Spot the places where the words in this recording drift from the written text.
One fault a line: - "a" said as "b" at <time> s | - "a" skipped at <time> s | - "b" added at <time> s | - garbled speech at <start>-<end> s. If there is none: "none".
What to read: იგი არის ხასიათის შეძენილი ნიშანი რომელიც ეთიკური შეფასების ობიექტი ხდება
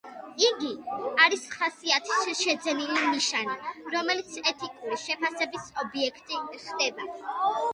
none